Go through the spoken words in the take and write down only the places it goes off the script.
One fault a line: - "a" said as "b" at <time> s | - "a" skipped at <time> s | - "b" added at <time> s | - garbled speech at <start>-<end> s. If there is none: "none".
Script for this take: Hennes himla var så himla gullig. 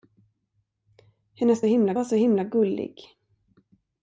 none